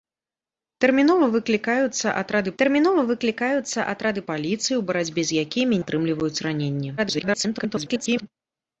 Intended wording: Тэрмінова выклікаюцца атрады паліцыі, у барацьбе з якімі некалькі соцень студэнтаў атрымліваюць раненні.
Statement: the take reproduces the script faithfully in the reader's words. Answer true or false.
false